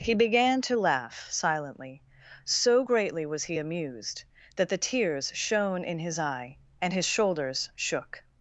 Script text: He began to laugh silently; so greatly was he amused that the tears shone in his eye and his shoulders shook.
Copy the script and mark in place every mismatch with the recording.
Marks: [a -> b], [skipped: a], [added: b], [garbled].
He began to laugh silently; so greatly was he amused that the tears shone in his eye and his shoulders shook.